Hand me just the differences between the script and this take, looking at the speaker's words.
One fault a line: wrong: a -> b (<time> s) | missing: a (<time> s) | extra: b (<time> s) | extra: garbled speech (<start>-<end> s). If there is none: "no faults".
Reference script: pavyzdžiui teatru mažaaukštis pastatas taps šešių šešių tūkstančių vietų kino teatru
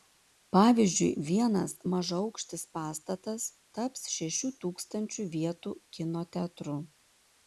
wrong: teatru -> vienas (1.3 s)
missing: šešių (4.5 s)